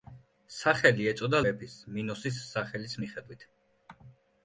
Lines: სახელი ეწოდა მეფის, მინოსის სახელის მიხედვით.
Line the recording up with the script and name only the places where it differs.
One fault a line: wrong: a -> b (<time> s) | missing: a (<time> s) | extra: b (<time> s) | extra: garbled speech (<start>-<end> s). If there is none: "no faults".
no faults